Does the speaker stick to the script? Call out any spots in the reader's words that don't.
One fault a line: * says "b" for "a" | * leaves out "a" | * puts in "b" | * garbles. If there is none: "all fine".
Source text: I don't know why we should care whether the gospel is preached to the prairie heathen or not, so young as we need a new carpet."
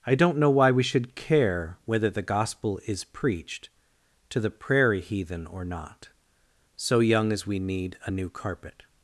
all fine